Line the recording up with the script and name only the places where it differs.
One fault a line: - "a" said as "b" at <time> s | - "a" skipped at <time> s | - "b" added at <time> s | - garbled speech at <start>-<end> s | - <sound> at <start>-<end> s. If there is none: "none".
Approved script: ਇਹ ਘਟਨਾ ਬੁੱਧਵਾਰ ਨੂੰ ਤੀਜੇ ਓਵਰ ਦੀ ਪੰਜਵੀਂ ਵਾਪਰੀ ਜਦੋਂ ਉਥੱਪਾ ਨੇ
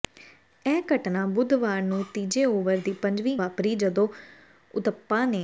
none